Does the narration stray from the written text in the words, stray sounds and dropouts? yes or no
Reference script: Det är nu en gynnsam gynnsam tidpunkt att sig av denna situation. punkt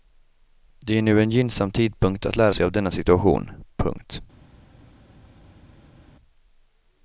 yes